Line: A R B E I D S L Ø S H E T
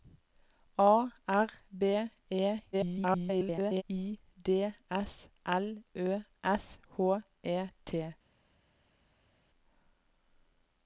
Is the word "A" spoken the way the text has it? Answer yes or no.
yes